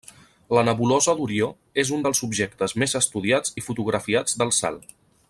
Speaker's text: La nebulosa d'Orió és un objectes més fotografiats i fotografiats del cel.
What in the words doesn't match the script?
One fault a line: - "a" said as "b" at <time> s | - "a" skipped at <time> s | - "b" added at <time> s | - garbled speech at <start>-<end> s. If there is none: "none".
- "dels" added at 2.0 s
- "fotografiats" said as "estudiats" at 3.0 s